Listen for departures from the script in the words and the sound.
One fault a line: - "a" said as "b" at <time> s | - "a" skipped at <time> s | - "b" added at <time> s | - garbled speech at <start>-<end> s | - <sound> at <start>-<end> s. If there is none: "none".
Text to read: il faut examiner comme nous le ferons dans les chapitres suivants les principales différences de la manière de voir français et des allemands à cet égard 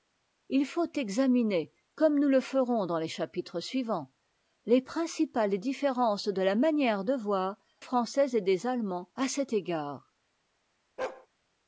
- bark at 11.0-11.3 s